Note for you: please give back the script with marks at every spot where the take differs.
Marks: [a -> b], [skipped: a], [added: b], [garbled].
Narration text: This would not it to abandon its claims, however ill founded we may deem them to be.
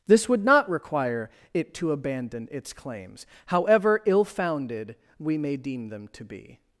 This would not [added: require] it to abandon its claims, however ill founded we may deem them to be.